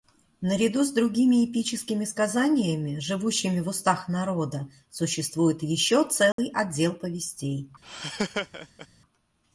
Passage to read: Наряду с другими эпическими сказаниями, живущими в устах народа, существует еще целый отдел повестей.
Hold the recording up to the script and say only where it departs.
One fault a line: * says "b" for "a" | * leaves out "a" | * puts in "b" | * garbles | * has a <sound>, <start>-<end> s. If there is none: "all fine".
* has a dropout, 6.3-6.4 s
* has a laugh, 7.8-8.9 s